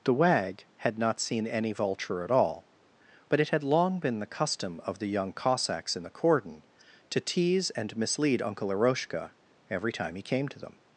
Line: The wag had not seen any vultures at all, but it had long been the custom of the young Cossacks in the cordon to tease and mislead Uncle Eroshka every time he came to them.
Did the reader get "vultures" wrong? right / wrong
wrong